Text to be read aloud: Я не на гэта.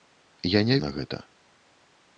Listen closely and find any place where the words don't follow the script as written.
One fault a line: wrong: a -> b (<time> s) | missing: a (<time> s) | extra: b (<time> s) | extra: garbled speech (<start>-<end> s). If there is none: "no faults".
no faults